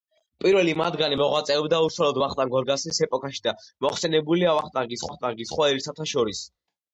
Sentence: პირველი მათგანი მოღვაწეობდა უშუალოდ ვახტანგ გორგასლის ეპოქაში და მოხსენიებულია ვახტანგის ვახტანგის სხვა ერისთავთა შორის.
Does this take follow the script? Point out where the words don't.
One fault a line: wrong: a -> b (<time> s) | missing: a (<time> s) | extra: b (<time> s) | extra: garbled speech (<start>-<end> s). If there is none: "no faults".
no faults